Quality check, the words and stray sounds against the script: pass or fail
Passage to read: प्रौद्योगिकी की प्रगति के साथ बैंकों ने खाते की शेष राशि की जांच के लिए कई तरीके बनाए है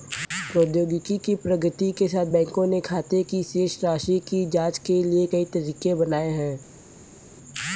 pass